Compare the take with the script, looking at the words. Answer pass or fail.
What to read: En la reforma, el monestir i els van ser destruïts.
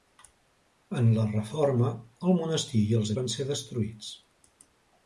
pass